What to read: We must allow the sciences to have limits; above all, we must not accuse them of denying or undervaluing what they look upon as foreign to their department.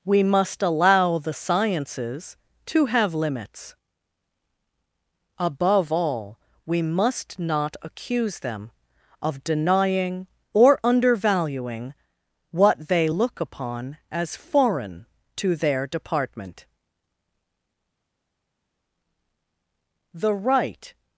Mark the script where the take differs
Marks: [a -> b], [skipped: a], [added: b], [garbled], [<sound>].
We must allow the sciences to have limits; above all, we must not accuse them of denying or undervaluing what they look upon as foreign to their department. [added: The right]